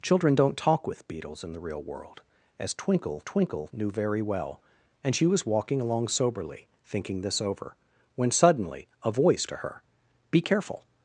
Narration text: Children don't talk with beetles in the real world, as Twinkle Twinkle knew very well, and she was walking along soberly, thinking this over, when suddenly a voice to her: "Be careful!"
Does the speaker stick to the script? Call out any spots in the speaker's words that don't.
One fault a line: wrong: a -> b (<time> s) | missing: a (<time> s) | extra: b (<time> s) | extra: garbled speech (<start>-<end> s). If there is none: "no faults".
no faults